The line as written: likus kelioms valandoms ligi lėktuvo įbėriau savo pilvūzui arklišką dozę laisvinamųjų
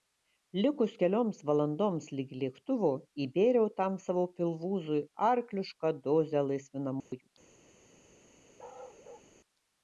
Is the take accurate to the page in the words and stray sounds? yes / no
no